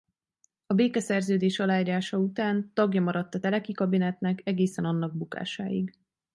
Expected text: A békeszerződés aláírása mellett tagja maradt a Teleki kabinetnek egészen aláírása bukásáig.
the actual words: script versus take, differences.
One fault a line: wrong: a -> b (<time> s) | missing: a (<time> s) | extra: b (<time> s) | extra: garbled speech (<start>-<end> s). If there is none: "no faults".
wrong: mellett -> után (2.2 s)
wrong: aláírása -> annak (4.8 s)